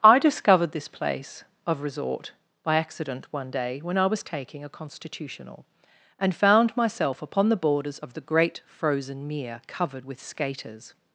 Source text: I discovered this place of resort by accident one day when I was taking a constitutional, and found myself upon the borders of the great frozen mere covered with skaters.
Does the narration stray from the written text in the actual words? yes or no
no